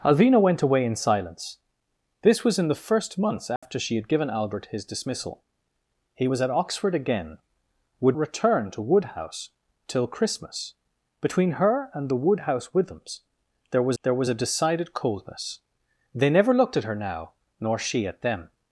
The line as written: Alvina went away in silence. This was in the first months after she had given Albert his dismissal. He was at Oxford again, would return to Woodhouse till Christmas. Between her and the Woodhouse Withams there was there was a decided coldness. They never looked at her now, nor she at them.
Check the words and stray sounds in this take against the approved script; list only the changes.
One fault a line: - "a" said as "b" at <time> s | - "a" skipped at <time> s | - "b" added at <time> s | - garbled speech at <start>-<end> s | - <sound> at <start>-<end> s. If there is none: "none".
- dropout at 3.6-3.6 s